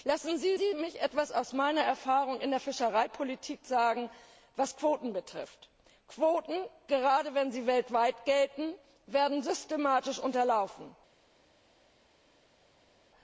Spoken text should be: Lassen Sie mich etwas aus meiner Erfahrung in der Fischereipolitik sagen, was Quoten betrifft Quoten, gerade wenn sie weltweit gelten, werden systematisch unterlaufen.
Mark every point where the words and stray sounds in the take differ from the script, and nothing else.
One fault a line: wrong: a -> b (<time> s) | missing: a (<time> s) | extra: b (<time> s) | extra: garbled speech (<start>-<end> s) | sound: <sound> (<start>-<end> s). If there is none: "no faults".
extra: Sie (0.6 s)